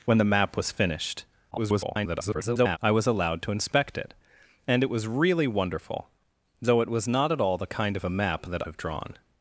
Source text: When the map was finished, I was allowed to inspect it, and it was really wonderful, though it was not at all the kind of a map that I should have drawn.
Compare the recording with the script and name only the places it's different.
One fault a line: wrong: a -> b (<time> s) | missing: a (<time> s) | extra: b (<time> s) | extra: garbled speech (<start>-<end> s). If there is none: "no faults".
extra: garbled speech (1.5-2.8 s)
missing: I should (8.7 s)